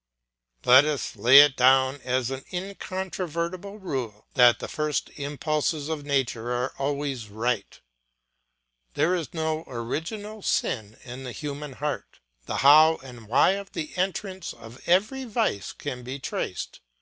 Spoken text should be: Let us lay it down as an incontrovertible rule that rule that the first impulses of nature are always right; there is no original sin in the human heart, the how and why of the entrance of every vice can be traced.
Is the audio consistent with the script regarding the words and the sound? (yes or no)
no